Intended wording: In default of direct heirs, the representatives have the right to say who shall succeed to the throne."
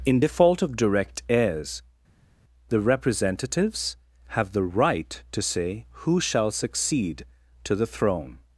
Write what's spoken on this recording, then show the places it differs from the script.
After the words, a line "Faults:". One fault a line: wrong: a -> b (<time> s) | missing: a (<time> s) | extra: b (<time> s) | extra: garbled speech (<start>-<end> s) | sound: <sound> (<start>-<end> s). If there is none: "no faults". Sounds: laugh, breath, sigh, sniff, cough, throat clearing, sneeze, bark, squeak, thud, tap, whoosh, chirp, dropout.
In default of direct heirs, the representatives have the right to say who shall succeed to the throne."
Faults:
no faults